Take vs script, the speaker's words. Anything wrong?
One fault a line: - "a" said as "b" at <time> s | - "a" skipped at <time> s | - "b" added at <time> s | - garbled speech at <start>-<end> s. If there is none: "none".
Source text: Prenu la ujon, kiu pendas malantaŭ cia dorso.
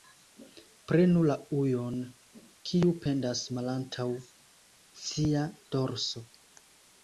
none